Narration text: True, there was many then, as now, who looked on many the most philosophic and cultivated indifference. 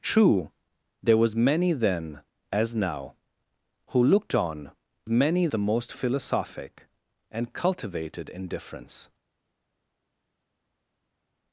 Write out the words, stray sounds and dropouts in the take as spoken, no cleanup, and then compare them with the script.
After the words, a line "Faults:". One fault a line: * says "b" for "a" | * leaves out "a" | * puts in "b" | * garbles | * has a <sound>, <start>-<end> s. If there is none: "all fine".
True, there was many then, as now, who looked on many the most philosophic and cultivated indifference.
Faults:
all fine